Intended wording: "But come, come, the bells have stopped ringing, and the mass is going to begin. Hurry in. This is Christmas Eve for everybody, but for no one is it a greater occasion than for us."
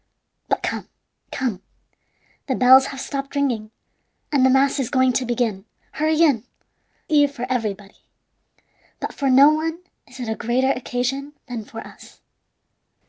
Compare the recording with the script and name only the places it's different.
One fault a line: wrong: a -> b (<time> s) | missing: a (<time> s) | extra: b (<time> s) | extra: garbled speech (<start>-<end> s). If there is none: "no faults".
missing: This is Christmas (6.4 s)